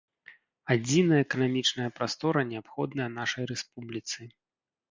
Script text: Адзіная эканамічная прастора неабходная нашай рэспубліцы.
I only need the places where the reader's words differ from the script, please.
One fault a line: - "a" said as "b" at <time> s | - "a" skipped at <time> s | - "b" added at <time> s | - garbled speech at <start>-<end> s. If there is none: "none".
none